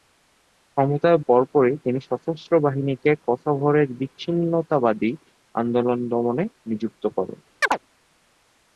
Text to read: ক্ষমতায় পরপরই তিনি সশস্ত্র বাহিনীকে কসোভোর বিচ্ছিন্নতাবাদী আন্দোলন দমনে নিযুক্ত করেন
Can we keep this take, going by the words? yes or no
yes